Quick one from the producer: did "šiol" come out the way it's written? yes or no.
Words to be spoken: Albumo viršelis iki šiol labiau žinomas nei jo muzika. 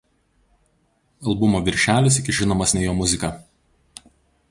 no